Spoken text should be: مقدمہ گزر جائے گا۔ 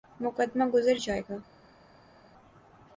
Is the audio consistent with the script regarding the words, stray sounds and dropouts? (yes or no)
yes